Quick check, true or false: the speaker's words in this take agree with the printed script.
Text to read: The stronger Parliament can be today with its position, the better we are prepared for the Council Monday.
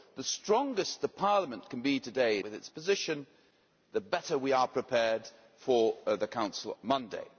true